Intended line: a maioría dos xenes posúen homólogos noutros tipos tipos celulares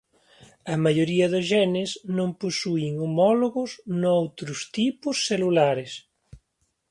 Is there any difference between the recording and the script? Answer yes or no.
yes